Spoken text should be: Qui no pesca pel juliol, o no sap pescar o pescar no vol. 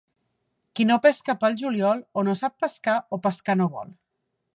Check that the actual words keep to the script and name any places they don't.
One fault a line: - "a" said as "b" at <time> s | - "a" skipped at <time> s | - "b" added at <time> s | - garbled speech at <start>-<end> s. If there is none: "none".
none